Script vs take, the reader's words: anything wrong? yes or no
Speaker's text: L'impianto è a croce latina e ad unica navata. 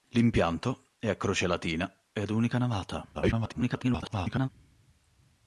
yes